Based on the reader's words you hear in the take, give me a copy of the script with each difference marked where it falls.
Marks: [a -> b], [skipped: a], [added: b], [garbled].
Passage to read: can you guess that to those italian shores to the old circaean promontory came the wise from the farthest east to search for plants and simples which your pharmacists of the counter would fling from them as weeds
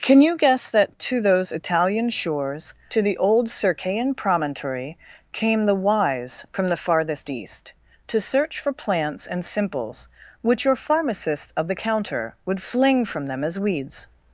can you guess that to those italian shores to the old circaean promontory came the wise from the farthest east to search for plants and simples which your pharmacists of the counter would fling from them as weeds